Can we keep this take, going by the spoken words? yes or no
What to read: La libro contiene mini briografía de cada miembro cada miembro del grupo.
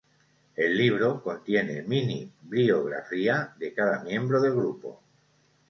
no